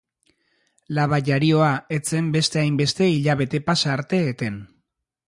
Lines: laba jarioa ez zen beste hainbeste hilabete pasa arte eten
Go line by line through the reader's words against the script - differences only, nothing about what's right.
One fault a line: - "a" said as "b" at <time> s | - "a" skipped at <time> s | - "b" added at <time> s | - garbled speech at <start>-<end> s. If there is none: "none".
none